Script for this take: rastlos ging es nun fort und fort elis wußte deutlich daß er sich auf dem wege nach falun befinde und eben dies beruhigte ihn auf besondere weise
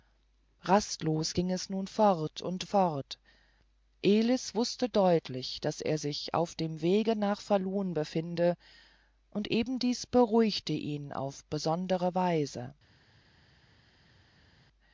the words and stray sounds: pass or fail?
pass